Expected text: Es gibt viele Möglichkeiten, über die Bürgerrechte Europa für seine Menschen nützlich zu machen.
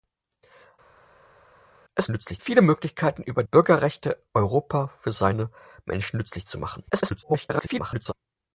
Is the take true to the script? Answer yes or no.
no